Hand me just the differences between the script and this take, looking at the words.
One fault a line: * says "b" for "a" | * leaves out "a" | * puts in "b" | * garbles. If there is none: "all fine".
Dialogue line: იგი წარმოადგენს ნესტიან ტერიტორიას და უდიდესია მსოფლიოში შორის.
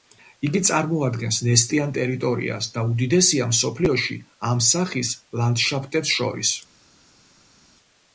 * puts in "ამ სახის ლანდშაფტებს"